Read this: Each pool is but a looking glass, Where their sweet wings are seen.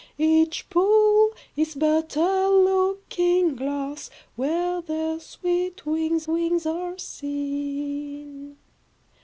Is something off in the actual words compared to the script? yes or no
yes